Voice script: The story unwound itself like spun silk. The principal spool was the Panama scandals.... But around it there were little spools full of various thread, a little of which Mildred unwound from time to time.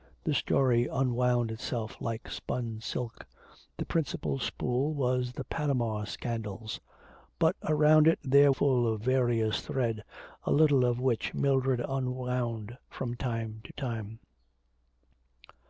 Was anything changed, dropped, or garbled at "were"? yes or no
yes